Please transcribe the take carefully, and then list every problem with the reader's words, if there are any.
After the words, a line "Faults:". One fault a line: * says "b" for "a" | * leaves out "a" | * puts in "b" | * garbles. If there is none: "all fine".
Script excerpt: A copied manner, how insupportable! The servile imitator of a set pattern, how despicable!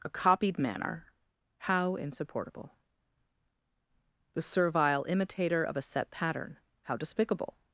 A copied manner, how insupportable! The servile imitator of a set pattern, how despicable!
Faults:
all fine